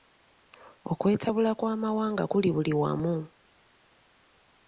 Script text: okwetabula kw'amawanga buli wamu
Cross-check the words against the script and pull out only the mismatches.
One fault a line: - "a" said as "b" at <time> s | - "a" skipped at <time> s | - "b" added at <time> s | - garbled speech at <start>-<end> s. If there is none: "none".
- "kuli" added at 2.3 s